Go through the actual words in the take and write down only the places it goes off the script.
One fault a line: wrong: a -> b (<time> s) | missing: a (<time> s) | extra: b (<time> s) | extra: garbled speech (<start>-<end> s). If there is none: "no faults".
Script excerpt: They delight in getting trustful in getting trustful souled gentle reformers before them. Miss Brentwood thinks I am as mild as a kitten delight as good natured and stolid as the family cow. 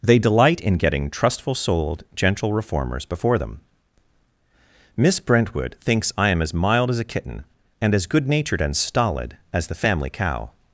missing: in getting trustful (1.5 s)
wrong: delight -> and (7.8 s)